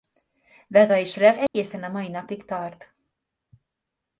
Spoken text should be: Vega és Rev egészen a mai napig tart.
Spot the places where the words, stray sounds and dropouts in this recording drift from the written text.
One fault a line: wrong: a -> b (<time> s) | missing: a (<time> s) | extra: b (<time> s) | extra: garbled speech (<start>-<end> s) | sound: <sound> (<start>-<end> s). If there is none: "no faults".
sound: dropout (1.5-1.5 s)